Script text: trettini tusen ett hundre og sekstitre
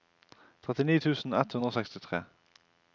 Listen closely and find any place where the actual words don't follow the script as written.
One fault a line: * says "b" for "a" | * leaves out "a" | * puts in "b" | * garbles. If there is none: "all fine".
all fine